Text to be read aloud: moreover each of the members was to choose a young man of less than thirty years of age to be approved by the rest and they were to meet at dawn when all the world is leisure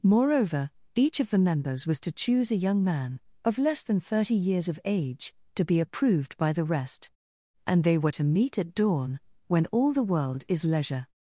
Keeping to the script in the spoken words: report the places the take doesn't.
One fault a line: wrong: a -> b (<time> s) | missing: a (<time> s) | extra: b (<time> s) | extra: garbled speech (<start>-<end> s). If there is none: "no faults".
no faults